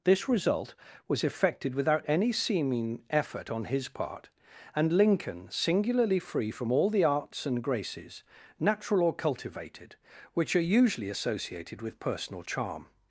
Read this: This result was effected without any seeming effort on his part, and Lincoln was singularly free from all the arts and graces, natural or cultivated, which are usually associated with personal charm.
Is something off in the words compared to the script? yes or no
yes